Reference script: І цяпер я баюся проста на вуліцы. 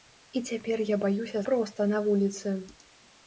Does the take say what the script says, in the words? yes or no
yes